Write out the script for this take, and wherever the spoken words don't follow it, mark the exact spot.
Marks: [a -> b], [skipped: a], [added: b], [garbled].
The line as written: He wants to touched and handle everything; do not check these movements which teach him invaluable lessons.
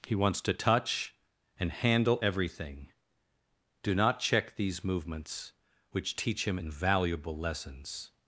He wants to [touched -> touch] and handle everything; do not check these movements which teach him invaluable lessons.